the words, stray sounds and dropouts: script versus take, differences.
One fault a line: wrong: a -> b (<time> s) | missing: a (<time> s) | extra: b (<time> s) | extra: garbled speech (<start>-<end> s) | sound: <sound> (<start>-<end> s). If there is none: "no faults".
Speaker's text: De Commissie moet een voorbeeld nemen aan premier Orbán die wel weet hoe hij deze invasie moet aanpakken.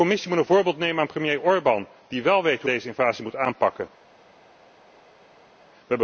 missing: hij (2.7 s)